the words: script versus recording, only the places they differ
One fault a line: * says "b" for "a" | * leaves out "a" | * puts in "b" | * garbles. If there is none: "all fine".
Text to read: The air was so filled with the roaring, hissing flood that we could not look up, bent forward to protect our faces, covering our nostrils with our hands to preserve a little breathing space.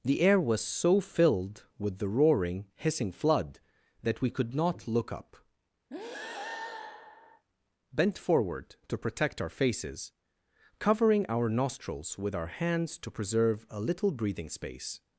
all fine